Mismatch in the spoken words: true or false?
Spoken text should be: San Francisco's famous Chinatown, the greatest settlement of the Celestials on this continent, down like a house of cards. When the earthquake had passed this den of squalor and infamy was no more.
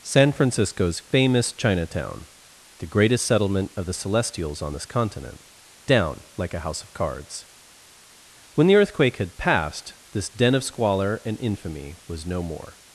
false